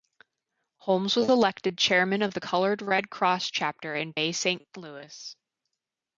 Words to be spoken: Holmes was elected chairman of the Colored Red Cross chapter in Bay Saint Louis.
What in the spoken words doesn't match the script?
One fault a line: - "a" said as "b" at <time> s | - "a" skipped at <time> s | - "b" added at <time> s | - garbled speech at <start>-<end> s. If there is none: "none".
none